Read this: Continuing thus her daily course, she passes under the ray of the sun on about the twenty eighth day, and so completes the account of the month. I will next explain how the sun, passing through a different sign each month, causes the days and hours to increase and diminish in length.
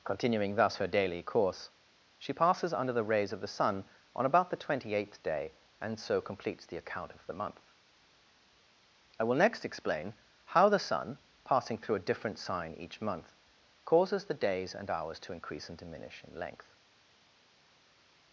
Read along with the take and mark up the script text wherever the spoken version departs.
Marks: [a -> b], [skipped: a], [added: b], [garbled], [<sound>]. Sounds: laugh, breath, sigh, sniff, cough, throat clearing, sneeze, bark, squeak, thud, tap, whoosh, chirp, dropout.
Continuing thus her daily course, she passes under the [ray -> rays] of the sun on about the twenty eighth day, and so completes the account of the month. I will next explain how the sun, passing through a different sign each month, causes the days and hours to increase and diminish in length.